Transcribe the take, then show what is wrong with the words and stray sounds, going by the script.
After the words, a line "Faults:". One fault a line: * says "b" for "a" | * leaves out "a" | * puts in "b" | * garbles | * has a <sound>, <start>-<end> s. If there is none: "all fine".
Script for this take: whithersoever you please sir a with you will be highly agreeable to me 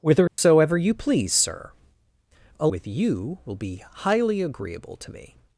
whithersoever you please sir a with you will be highly agreeable to me
Faults:
* has a dropout, 0.3-0.4 s